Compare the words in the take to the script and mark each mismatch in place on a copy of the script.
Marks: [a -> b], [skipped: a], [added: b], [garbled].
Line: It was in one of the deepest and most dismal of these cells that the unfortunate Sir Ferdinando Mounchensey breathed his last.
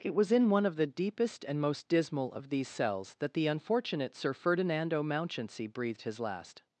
It was in one of the deepest and most dismal of these cells that the unfortunate Sir Ferdinando Mounchensey breathed his last.